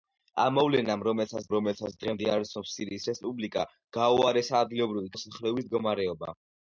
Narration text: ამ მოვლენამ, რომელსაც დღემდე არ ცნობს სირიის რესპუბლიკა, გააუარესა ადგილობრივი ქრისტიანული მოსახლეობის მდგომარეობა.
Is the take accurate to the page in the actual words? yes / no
no